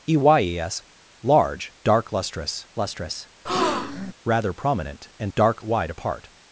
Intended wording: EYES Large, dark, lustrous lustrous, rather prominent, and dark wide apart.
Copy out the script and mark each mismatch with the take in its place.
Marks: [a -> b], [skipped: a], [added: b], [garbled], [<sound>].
EYES Large, dark, lustrous lustrous, [breath] rather prominent, and dark wide apart.